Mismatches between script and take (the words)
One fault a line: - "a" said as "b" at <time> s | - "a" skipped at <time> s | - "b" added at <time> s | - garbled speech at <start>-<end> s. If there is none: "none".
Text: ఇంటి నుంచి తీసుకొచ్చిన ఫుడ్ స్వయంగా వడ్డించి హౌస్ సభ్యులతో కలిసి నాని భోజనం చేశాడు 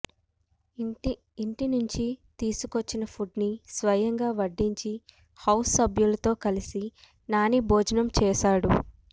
- "ని" added at 3.4 s